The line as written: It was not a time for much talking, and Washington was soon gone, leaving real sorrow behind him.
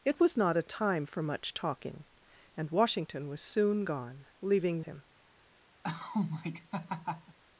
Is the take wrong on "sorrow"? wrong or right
wrong